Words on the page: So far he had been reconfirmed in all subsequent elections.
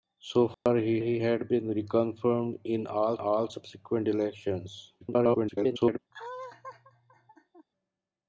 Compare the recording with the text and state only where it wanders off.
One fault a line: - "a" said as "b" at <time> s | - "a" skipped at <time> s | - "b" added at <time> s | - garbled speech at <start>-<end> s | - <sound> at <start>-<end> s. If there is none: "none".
- dropout at 0.5-0.7 s
- "he" added at 1.0 s
- "all" added at 3.2 s
- garbled speech at 5.0-6.0 s
- laugh at 6.1-7.7 s